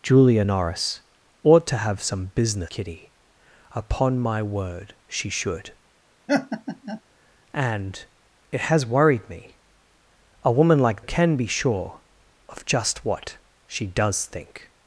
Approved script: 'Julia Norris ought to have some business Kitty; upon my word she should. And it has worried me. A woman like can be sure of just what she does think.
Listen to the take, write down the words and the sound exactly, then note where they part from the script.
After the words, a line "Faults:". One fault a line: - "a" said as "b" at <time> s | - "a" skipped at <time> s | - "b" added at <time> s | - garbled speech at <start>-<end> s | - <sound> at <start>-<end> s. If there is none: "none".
'Julia Norris ought to have some business Kitty; upon my word she should. And it has worried me. A woman like can be sure of just what she does think.
Faults:
- laugh at 6.3-7.0 s